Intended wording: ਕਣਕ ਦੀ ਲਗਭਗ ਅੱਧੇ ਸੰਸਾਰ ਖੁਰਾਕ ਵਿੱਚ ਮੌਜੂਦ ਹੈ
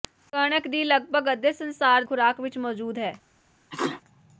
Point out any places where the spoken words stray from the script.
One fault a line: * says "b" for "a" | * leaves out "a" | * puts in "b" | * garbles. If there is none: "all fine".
all fine